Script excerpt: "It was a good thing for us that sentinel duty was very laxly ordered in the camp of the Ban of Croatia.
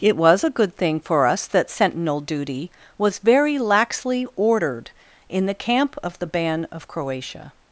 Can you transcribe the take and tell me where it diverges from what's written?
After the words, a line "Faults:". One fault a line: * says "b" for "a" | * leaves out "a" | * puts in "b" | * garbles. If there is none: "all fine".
"It was a good thing for us that sentinel duty was very laxly ordered in the camp of the Ban of Croatia.
Faults:
all fine